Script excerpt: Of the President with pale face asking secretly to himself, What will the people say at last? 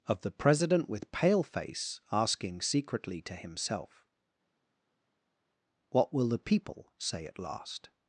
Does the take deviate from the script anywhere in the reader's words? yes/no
no